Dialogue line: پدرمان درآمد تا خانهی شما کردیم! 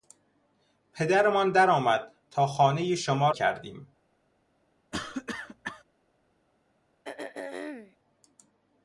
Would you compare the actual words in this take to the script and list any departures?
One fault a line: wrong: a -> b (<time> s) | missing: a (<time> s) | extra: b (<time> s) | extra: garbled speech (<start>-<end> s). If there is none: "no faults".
no faults